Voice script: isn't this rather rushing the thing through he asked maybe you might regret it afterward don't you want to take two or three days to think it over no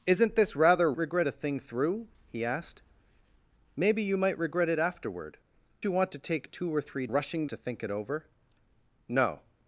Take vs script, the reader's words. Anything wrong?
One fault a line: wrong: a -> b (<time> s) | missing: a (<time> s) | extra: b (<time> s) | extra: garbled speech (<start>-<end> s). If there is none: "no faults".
wrong: rushing -> regret (1.0 s)
missing: don't (5.4 s)
wrong: days -> rushing (7.1 s)